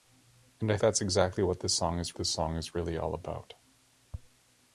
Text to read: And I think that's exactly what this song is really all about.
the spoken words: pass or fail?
fail